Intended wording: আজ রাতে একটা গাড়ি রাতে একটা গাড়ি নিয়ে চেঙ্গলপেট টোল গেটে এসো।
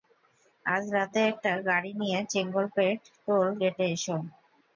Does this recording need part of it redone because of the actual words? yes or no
yes